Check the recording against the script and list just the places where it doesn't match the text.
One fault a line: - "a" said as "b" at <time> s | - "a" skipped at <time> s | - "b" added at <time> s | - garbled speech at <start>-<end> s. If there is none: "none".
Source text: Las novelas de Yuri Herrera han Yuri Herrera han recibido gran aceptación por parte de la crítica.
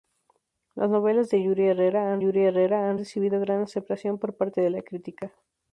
none